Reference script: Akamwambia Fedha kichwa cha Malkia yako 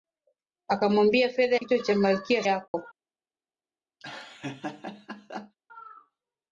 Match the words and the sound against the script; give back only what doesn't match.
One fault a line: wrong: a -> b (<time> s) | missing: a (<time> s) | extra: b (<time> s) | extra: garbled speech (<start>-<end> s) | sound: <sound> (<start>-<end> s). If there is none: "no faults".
sound: dropout (2.7-2.7 s)
sound: laugh (4.0-5.6 s)